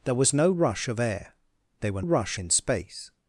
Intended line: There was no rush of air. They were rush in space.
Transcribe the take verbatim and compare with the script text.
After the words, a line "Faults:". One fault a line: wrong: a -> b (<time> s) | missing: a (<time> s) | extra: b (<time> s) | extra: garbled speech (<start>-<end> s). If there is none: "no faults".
There was no rush of air. They were rush in space.
Faults:
no faults